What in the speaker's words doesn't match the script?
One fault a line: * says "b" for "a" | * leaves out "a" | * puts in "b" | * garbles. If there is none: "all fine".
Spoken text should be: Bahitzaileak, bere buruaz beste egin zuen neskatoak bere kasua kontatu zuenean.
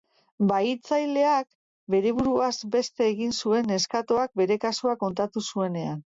all fine